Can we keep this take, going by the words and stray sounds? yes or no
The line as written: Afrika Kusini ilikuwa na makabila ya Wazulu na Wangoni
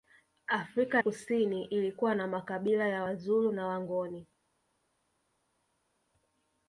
yes